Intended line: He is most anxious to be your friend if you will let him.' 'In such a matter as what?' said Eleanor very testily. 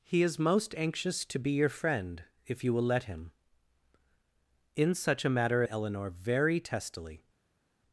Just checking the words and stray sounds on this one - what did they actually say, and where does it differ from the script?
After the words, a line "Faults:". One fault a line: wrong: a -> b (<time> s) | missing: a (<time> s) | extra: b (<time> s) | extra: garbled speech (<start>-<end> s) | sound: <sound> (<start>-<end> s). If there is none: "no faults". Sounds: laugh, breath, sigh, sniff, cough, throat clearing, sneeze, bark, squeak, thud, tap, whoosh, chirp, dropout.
He is most anxious to be your friend if you will let him.' 'In such a matter Eleanor very testily.
Faults:
missing: as what said (5.6 s)